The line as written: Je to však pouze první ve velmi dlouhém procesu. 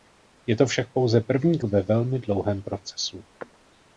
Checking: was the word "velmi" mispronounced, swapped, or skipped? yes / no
no